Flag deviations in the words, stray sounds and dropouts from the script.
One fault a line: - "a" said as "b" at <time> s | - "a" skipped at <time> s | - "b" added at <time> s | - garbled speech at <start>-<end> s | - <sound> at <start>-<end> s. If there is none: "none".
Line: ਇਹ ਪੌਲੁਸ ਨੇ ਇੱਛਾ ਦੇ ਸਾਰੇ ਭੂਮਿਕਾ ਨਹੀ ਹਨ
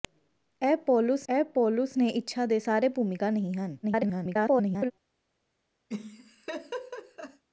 - "ਇਹ ਪੌਲੁਸ" added at 1.3 s
- garbled speech at 3.8-4.9 s
- laugh at 5.9-7.4 s